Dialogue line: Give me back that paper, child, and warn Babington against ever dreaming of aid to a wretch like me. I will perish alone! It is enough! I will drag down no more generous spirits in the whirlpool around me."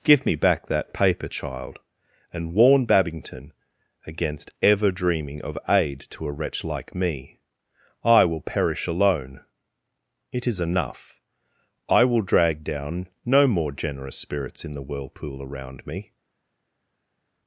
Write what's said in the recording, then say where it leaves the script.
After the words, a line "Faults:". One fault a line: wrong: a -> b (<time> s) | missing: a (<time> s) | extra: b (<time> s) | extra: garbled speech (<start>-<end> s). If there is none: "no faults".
Give me back that paper, child, and warn Babington against ever dreaming of aid to a wretch like me. I will perish alone! It is enough! I will drag down no more generous spirits in the whirlpool around me."
Faults:
no faults